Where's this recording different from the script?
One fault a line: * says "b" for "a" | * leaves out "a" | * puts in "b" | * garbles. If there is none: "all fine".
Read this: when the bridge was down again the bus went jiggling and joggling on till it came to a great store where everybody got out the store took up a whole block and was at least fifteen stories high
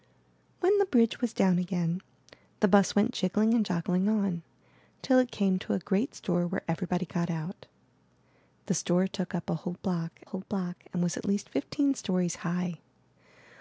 * puts in "whole block"